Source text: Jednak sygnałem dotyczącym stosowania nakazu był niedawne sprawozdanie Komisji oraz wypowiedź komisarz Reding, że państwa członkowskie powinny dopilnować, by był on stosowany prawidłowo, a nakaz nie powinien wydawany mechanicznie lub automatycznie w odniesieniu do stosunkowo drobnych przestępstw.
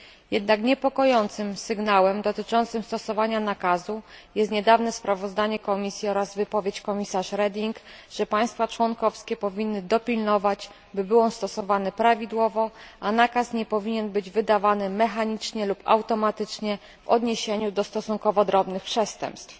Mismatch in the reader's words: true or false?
true